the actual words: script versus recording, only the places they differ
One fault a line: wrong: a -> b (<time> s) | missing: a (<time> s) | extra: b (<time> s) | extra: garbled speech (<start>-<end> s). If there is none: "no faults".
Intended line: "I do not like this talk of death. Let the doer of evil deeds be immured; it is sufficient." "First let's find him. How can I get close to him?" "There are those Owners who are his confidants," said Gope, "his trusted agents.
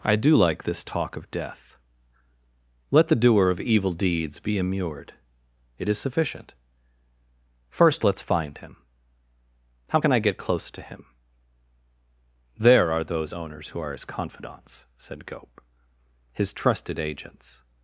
missing: not (0.3 s)